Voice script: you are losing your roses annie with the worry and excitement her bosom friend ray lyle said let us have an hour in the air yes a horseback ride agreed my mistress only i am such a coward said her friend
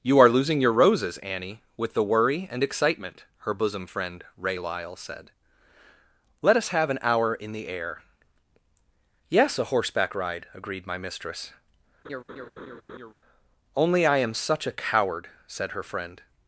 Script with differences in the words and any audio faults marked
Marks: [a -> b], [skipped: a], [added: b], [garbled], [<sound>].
you are losing your roses annie with the worry and excitement her bosom friend ray lyle said let us have an hour in the air yes a horseback ride agreed my mistress [laugh] only i am such a coward said her friend